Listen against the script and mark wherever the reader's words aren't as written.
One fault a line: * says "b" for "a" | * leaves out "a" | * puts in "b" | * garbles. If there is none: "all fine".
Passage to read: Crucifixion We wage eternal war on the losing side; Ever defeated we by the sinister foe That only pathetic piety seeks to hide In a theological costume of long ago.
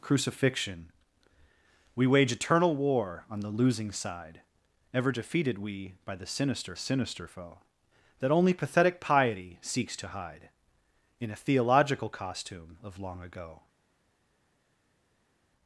* puts in "sinister"